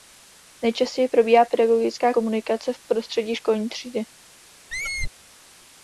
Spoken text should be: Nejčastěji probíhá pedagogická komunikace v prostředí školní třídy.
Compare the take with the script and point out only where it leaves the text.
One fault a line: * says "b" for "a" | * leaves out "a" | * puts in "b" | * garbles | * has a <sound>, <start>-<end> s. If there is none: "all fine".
* has a squeak, 4.7-5.1 s